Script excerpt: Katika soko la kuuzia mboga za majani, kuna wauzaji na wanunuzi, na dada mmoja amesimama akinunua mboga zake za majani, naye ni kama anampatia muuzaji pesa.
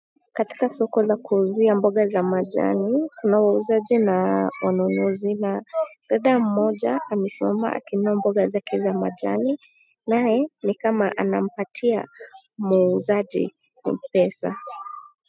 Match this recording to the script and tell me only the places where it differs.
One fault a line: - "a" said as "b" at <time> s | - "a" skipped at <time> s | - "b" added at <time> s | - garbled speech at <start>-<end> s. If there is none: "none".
none